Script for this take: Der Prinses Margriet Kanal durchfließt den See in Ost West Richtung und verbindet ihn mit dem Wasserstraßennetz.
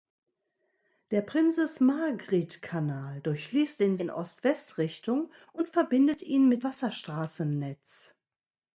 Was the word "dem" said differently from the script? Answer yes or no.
yes